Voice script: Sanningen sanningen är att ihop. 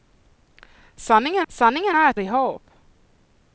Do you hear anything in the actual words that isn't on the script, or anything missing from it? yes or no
no